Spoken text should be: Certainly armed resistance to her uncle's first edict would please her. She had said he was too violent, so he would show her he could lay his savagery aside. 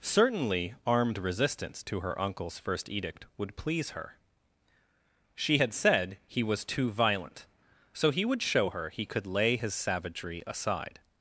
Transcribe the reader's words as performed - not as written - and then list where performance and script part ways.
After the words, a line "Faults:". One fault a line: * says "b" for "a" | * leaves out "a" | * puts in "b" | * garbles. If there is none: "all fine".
Certainly armed resistance to her uncle's first edict would please her. She had said he was too violent, so he would show her he could lay his savagery aside.
Faults:
all fine